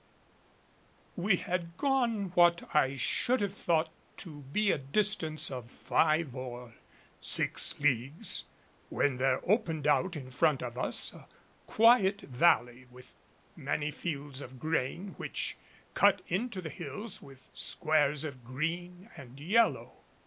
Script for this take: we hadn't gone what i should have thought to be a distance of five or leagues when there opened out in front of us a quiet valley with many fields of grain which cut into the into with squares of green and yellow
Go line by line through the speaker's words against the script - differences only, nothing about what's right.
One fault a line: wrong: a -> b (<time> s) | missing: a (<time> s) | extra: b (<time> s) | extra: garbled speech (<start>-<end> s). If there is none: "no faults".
wrong: hadn't -> had (1.4 s)
extra: six (7.2 s)
wrong: into -> hills (16.7 s)